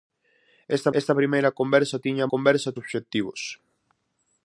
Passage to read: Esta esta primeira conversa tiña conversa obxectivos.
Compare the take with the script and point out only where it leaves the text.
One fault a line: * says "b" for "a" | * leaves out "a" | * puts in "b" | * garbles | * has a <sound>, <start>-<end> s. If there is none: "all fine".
all fine